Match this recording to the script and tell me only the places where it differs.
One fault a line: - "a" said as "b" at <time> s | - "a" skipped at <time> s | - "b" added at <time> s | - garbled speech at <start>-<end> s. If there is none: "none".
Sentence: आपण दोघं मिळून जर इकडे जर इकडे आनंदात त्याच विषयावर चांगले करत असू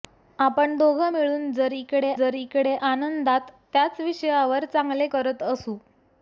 none